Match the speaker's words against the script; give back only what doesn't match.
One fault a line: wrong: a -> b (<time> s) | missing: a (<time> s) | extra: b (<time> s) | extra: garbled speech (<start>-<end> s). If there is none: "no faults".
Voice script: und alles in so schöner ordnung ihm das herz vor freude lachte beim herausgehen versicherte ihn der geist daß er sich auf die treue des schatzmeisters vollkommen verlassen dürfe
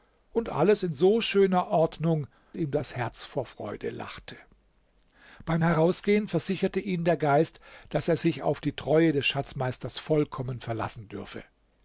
no faults